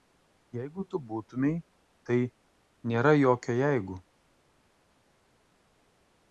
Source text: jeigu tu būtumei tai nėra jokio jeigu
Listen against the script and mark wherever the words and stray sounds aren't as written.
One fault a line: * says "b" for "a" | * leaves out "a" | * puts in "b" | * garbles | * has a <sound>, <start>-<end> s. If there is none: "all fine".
all fine